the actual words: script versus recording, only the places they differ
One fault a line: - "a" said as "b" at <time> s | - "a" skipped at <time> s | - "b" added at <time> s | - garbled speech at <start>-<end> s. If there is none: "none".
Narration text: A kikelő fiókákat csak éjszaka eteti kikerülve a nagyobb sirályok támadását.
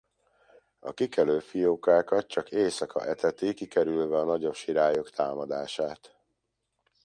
none